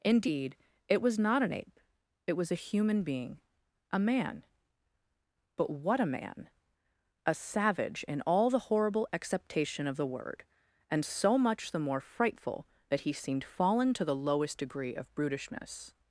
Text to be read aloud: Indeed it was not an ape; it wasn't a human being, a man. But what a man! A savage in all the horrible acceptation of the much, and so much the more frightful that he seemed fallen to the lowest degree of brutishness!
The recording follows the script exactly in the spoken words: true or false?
false